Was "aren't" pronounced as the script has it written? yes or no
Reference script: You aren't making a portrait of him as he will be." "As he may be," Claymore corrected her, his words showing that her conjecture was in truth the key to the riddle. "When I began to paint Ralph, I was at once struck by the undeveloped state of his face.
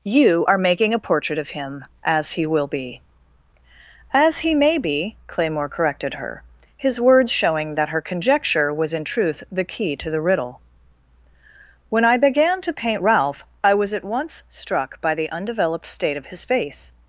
no